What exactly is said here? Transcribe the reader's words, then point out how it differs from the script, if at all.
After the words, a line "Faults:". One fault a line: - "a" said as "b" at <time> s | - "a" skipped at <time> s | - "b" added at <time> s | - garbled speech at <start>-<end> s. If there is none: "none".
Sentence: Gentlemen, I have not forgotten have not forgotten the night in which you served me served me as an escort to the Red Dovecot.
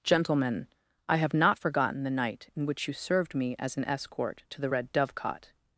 Gentlemen, I have not forgotten the night in which you served me as an escort to the Red Dovecot.
Faults:
- "have not forgotten" skipped at 2.0 s
- "served me" skipped at 3.5 s